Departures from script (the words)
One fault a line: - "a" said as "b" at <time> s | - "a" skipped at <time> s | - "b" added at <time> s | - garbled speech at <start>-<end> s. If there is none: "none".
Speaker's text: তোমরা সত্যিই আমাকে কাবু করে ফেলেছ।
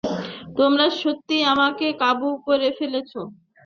none